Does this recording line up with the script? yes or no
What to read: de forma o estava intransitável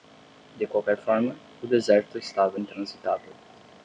no